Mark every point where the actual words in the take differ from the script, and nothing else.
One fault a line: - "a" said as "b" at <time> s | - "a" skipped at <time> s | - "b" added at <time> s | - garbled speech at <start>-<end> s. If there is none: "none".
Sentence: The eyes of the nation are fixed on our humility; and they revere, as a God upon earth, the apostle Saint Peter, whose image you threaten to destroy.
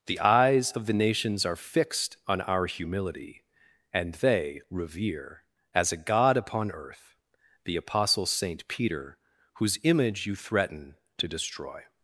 - "nation" said as "nations" at 0.9 s